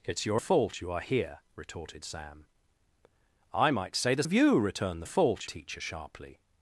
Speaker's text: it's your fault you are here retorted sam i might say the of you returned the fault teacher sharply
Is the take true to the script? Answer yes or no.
yes